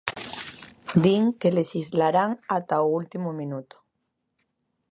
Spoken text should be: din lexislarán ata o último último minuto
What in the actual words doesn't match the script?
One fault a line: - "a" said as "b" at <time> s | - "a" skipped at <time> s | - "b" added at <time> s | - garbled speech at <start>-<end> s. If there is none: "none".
- "que" added at 1.4 s
- "último" skipped at 3.3 s